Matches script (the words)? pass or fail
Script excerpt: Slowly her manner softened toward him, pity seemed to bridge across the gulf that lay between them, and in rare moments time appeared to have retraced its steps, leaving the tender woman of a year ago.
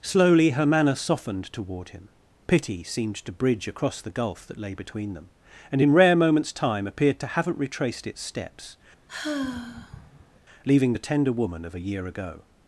fail